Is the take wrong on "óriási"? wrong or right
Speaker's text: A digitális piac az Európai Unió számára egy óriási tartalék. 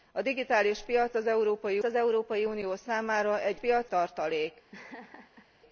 wrong